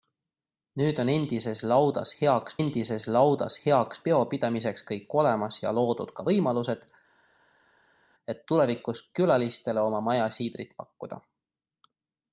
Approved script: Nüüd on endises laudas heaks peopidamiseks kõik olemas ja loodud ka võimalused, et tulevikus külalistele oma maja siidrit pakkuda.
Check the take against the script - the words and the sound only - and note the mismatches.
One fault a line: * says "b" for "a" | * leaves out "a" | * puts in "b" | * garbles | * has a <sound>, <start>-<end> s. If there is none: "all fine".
* puts in "endises laudas heaks"